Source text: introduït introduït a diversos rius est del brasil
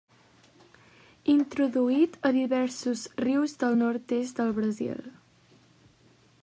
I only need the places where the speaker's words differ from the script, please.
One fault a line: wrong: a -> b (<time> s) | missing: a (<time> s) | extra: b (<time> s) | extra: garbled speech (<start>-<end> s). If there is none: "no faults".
missing: introduït (2.2 s)
extra: del nord (3.6 s)